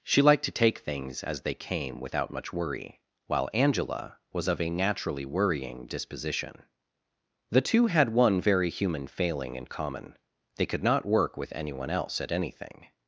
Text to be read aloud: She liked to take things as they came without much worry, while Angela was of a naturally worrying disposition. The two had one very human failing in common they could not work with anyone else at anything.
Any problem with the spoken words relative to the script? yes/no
no